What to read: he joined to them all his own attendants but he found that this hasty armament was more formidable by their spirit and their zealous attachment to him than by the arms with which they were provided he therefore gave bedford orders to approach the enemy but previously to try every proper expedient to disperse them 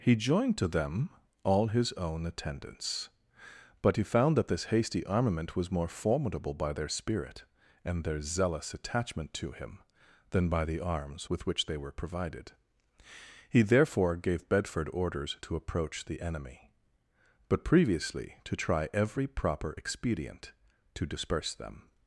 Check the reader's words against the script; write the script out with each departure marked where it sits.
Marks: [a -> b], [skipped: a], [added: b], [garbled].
he joined to them all his own attendants but he found that this hasty armament was more formidable by their spirit and their zealous attachment to him than by the arms with which they were provided he therefore gave bedford orders to approach the enemy but previously to try every proper expedient to disperse them